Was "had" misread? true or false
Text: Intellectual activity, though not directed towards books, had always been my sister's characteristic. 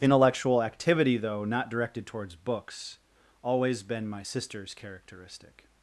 true